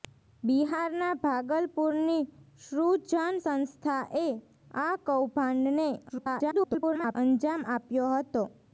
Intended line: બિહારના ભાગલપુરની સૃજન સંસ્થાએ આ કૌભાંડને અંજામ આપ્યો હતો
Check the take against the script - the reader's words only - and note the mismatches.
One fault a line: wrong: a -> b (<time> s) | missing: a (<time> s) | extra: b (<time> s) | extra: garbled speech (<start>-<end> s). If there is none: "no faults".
extra: garbled speech (6.1-7.2 s)